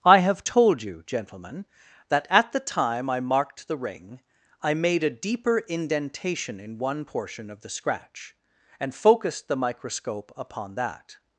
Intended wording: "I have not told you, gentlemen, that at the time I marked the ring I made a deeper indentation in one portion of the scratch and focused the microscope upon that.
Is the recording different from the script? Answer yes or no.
yes